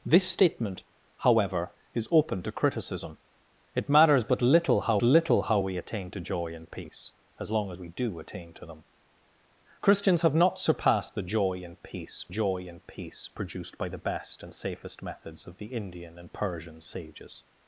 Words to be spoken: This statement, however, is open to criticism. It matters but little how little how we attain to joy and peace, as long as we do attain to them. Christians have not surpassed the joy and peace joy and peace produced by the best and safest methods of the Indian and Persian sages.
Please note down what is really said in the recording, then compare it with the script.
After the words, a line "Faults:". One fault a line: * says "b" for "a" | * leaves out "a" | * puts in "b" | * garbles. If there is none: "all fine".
This statement, however, is open to criticism. It matters but little how little how we attain to joy and peace, as long as we do attain to them. Christians have not surpassed the joy and peace joy and peace produced by the best and safest methods of the Indian and Persian sages.
Faults:
all fine